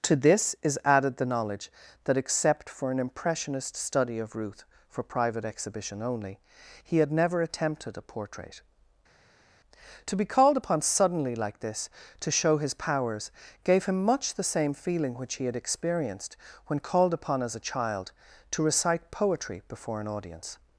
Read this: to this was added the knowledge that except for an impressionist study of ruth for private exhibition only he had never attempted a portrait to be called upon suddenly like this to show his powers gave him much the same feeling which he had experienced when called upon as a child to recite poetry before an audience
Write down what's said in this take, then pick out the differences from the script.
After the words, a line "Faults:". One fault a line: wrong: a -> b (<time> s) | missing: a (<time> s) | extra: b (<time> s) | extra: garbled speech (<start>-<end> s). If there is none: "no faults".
to this is added the knowledge that except for an impressionist study of ruth for private exhibition only he had never attempted a portrait to be called upon suddenly like this to show his powers gave him much the same feeling which he had experienced when called upon as a child to recite poetry before an audience
Faults:
wrong: was -> is (0.6 s)